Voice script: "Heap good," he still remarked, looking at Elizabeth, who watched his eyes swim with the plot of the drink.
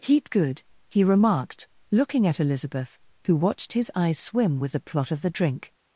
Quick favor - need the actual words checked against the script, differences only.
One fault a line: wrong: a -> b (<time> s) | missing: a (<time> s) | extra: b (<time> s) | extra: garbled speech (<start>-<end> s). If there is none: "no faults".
missing: still (1.0 s)